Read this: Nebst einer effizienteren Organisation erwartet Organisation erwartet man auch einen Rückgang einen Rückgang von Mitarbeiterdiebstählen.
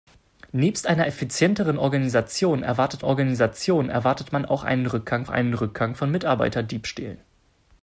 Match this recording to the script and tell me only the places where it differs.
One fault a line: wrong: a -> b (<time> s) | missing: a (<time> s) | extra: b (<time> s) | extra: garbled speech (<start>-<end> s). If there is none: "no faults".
no faults